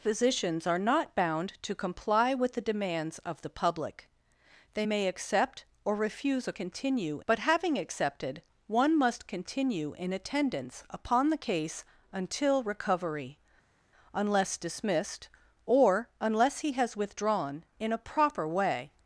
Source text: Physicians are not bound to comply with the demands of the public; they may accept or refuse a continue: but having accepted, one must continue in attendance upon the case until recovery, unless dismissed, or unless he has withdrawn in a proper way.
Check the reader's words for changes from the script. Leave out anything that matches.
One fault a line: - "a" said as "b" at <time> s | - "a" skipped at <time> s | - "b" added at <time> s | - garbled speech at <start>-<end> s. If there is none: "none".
none